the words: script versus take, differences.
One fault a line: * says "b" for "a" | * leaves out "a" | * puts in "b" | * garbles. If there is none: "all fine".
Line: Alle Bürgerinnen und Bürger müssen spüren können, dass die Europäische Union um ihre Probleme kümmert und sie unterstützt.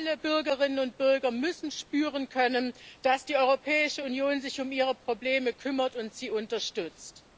* puts in "sich"